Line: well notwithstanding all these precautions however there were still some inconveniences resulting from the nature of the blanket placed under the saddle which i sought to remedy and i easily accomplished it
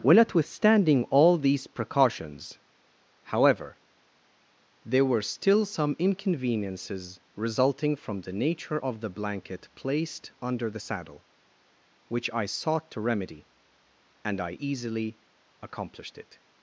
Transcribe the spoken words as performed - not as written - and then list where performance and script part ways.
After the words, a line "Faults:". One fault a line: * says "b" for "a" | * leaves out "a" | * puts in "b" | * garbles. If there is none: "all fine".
well notwithstanding all these precautions however there were still some inconveniences resulting from the nature of the blanket placed under the saddle which i sought to remedy and i easily accomplished it
Faults:
all fine